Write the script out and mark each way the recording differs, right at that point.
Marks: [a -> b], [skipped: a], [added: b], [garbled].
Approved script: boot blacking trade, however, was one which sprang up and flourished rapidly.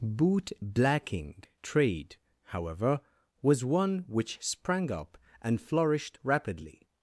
boot blacking trade, however, was one which sprang up and flourished rapidly.